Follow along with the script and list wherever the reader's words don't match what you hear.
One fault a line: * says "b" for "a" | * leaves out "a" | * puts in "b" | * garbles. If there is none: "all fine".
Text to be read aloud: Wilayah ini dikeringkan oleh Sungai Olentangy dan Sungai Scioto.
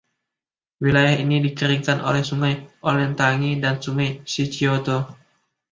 all fine